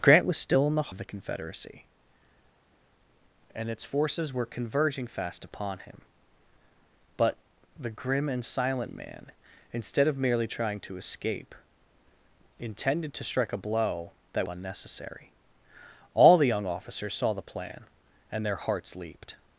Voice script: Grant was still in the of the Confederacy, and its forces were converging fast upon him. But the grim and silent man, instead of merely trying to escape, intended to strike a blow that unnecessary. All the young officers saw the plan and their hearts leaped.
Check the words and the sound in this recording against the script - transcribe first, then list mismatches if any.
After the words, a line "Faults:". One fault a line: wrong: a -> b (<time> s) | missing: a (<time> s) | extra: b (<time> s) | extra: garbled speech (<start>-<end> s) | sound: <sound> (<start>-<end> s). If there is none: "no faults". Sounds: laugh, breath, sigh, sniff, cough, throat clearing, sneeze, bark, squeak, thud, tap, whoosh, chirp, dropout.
Grant was still in the of the Confederacy, and its forces were converging fast upon him. But the grim and silent man, instead of merely trying to escape, intended to strike a blow that unnecessary. All the young officers saw the plan and their hearts leaped.
Faults:
no faults